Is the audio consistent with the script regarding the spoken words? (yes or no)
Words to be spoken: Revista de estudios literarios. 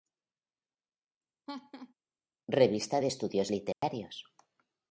yes